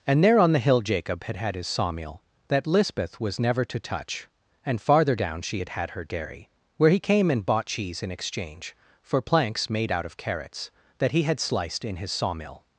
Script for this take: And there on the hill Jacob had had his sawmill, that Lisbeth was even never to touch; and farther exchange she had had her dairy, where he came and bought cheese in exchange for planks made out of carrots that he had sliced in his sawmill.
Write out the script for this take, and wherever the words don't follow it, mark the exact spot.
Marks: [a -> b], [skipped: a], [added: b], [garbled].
And there on the hill Jacob had had his sawmill, that Lisbeth was [skipped: even] never to touch; and farther [exchange -> down] she had had her dairy, where he came and bought cheese in exchange for planks made out of carrots that he had sliced in his sawmill.